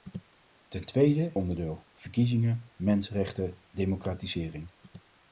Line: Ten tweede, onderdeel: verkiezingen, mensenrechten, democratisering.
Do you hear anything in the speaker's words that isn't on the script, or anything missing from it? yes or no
no